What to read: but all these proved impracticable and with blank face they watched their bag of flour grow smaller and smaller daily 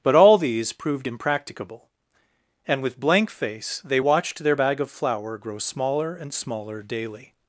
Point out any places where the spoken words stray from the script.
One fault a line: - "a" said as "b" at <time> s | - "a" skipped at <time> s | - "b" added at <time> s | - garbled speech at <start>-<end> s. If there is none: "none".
none